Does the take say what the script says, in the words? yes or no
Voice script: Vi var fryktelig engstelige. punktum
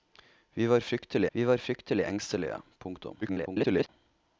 no